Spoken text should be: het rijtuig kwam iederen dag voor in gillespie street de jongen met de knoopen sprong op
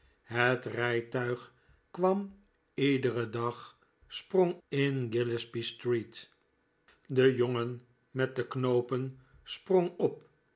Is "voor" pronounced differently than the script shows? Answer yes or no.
yes